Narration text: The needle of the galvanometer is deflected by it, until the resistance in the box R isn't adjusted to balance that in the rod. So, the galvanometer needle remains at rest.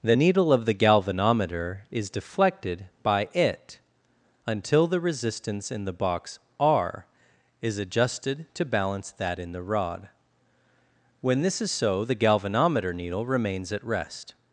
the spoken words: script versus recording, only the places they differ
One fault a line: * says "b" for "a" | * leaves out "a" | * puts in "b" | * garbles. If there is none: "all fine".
* says "is" for "isn't"
* puts in "When this is"